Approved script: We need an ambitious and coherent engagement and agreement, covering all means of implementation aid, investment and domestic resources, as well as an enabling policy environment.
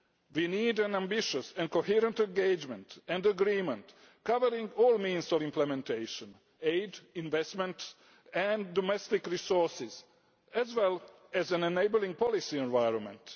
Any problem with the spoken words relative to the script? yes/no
no